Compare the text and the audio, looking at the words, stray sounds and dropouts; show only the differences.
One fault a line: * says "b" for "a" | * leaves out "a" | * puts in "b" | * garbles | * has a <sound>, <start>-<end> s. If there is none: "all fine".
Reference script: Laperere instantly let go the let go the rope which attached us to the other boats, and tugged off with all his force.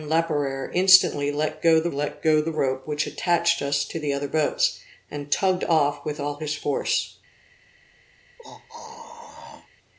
* has a throat clearing, 8.4-9.7 s